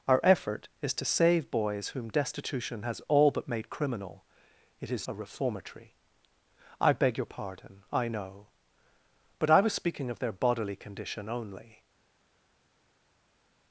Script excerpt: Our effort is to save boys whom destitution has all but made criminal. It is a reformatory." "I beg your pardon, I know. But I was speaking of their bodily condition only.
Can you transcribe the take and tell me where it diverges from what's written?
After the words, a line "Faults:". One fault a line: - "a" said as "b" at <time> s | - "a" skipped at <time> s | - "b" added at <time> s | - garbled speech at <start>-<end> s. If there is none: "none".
Our effort is to save boys whom destitution has all but made criminal. It is a reformatory." "I beg your pardon, I know. But I was speaking of their bodily condition only.
Faults:
none